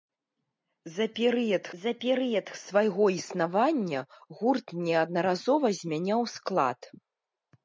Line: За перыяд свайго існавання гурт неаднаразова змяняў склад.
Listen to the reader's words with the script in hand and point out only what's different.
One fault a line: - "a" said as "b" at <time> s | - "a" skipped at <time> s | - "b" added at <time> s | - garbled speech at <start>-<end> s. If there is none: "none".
- "за перыяд" added at 1.8 s